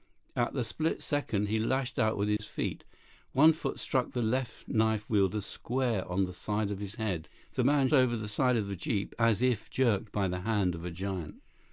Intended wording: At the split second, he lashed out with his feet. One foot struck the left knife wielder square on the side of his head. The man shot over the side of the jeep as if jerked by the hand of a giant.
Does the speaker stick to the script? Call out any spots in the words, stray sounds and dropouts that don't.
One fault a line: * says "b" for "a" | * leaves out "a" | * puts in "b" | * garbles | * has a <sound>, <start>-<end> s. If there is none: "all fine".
* has a dropout, 2.4-2.4 s
* leaves out "shot"